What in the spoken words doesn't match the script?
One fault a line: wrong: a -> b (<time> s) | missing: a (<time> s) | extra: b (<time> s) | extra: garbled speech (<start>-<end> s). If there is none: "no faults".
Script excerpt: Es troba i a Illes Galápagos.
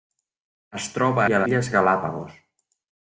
no faults